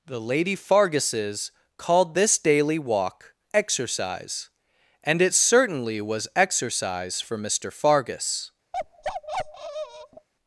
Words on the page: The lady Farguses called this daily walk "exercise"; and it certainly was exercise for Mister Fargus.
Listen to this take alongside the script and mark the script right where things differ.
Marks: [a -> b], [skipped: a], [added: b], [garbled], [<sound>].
The lady Farguses called this daily walk "exercise"; and it certainly was exercise for Mister Fargus. [bark]